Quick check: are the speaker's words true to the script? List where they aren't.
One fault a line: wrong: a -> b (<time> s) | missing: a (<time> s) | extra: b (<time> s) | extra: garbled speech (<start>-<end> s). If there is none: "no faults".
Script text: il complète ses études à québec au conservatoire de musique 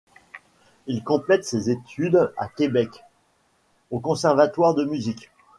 no faults